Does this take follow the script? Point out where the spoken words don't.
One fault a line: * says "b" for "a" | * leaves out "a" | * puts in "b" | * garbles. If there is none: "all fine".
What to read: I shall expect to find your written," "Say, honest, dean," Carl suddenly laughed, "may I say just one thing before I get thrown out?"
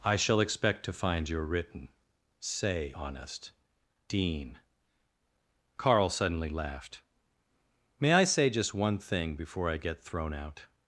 all fine